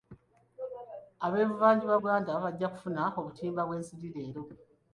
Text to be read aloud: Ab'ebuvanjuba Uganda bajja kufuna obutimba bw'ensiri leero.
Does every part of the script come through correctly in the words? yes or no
yes